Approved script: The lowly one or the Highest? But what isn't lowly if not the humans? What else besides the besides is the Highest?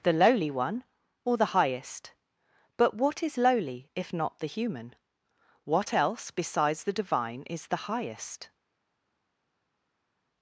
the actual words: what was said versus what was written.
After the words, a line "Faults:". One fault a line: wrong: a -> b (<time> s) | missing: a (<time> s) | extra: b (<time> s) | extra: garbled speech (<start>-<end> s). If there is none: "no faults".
The lowly one or the Highest? But what is lowly if not the human? What else besides the divine is the Highest?
Faults:
wrong: isn't -> is (3.2 s)
wrong: humans -> human (4.5 s)
wrong: besides -> divine (6.9 s)